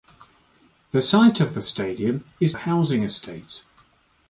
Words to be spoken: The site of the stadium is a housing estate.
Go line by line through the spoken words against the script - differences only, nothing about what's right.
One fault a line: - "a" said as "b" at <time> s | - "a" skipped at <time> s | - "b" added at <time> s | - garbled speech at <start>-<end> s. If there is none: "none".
none